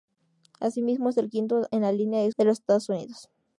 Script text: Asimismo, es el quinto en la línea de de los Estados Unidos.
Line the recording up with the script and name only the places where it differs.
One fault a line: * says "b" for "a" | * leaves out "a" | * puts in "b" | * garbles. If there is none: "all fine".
all fine